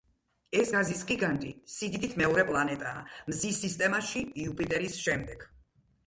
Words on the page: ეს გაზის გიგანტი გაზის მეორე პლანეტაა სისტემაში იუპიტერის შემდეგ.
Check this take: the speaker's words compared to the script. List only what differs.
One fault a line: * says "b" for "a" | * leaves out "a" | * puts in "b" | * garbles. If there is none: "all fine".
* says "სიდიდით" for "გაზის"
* puts in "მზის"